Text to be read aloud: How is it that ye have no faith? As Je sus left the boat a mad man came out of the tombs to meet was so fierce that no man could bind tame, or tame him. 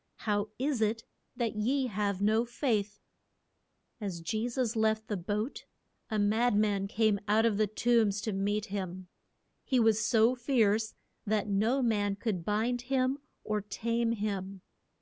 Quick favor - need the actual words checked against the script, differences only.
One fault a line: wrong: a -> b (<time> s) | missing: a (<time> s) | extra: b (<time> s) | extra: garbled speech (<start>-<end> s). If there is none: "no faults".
extra: him He (8.7 s)
wrong: tame -> him (12.8 s)